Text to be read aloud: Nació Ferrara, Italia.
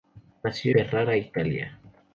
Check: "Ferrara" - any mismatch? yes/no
no